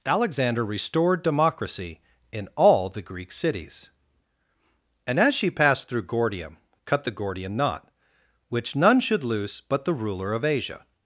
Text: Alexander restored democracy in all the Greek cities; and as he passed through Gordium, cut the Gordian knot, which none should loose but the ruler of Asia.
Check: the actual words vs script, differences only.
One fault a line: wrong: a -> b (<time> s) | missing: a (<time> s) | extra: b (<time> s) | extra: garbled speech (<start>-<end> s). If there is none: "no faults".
wrong: he -> she (5.3 s)